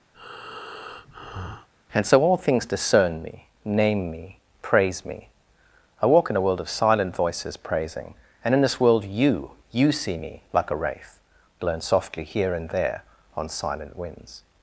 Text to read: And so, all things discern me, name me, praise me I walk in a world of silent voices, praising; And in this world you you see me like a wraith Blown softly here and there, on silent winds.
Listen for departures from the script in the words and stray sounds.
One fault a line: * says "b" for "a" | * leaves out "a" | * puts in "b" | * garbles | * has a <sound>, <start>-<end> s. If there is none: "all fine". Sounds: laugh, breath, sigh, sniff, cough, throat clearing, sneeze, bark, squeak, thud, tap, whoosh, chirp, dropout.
* has a breath, 0.1-1.7 s